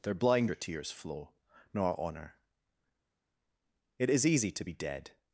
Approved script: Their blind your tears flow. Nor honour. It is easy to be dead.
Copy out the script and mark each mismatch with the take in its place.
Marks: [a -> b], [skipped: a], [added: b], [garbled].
Their blind your tears flow. Nor honour. It is easy to be dead.